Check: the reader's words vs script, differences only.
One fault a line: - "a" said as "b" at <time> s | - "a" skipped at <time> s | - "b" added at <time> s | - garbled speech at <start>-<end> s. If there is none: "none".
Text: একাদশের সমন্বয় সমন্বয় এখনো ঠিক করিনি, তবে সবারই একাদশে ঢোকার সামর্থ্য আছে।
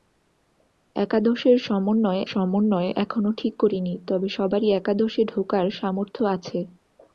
none